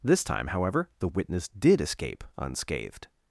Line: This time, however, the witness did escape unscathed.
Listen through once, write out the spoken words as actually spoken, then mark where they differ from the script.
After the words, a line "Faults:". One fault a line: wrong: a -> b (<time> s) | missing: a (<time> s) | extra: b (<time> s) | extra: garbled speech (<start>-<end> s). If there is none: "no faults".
This time, however, the witness did escape unscathed.
Faults:
no faults